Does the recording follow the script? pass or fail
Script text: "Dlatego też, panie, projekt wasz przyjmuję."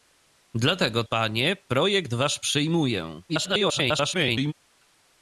fail